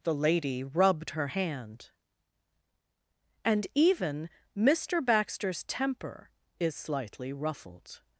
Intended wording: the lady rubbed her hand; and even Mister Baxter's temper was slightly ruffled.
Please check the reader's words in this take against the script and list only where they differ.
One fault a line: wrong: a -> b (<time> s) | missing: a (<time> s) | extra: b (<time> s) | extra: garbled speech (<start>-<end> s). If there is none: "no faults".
wrong: was -> is (6.6 s)